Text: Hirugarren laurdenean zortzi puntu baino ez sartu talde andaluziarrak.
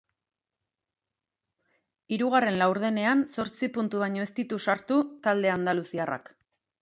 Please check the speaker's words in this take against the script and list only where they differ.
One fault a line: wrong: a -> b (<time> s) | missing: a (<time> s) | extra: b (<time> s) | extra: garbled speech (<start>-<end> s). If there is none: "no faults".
extra: ditu (4.4 s)